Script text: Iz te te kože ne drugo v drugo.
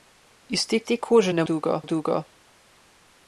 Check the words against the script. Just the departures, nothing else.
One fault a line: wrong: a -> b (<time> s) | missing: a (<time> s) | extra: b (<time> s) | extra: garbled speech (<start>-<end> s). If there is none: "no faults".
no faults